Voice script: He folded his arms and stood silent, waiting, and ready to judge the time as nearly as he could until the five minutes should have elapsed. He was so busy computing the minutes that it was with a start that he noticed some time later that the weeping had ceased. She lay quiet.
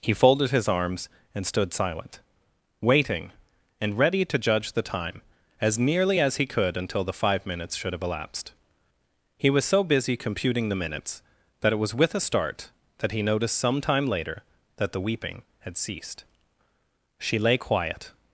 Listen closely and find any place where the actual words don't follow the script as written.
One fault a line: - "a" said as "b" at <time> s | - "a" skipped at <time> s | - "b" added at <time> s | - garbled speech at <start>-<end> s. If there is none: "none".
none